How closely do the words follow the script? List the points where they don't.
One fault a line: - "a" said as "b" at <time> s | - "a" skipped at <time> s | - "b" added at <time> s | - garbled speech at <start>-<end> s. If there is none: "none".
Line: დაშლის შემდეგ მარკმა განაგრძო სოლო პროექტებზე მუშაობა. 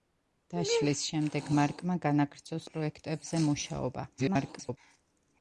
- "სოლო" skipped at 2.6 s
- garbled speech at 4.2-4.8 s